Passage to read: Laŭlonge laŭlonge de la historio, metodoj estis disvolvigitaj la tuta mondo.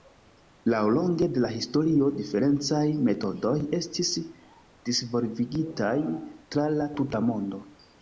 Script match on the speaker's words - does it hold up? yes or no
no